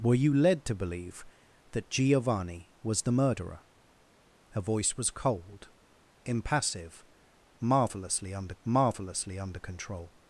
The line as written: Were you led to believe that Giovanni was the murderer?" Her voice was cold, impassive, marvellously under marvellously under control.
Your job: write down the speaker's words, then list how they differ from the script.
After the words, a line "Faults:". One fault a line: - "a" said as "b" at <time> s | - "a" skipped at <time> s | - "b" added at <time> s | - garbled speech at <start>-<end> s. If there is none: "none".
Were you led to believe that Giovanni was the murderer?" Her voice was cold, impassive, marvellously under marvellously under control.
Faults:
none